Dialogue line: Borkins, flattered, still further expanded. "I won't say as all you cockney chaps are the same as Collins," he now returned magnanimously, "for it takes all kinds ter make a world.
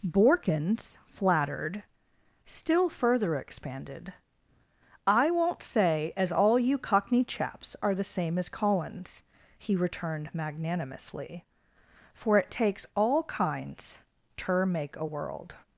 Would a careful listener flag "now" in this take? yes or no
yes